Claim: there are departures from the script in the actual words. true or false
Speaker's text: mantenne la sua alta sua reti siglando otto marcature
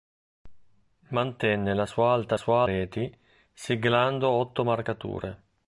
false